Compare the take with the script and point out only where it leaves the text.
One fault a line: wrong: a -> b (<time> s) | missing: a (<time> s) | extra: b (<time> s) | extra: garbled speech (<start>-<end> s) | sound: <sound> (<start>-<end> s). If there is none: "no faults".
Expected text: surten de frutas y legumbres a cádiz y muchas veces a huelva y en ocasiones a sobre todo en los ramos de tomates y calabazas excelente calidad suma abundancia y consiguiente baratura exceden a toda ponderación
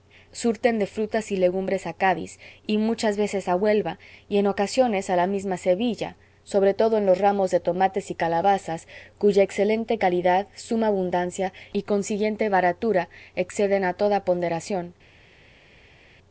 extra: la misma sevilla (5.2 s)
extra: cuya (9.2 s)